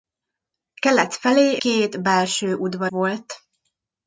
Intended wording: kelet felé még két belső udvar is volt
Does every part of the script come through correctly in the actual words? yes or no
no